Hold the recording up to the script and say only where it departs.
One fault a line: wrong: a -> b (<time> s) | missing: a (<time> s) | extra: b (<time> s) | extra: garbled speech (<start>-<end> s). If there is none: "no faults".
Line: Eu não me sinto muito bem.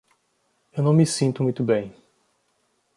no faults